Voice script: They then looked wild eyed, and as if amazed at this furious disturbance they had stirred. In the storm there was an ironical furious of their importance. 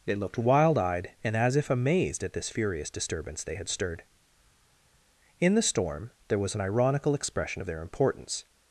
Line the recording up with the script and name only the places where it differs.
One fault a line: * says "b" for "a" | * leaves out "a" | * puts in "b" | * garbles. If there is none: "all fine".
* leaves out "then"
* says "expression" for "furious"